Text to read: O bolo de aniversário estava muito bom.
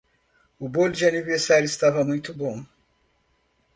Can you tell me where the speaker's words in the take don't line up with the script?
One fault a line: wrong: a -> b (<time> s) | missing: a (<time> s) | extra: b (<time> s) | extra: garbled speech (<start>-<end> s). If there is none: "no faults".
no faults